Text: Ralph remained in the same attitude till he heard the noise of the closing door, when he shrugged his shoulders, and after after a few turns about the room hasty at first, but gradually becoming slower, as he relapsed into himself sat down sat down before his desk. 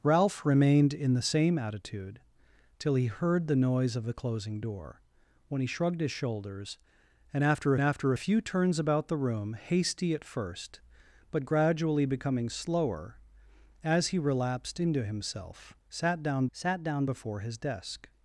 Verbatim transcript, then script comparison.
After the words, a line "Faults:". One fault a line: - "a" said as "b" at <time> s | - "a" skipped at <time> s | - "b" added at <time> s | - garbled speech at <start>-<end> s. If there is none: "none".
Ralph remained in the same attitude till he heard the noise of the closing door, when he shrugged his shoulders, and after after a few turns about the room hasty at first, but gradually becoming slower, as he relapsed into himself sat down sat down before his desk.
Faults:
none